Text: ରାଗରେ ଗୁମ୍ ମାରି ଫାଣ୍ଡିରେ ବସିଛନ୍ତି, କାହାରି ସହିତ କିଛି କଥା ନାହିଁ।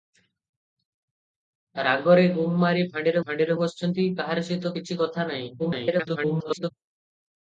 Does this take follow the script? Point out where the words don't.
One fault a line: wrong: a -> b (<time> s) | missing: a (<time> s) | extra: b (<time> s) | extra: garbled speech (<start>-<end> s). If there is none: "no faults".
extra: ଫାଣ୍ଡିରେ (3.2 s)
extra: garbled speech (5.6-6.7 s)